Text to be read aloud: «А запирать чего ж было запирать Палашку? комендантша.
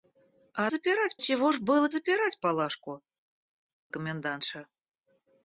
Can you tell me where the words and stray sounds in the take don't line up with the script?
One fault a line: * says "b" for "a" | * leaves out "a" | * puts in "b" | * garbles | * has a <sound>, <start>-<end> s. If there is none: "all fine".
all fine